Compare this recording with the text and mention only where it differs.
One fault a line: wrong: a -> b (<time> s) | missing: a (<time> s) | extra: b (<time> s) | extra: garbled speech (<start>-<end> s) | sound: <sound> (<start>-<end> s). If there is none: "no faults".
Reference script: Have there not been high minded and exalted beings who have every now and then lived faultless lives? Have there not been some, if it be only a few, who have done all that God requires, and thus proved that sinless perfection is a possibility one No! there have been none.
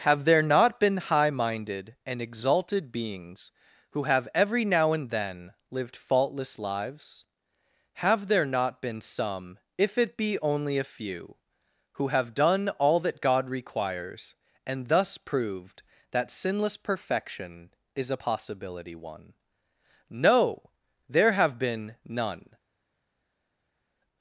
no faults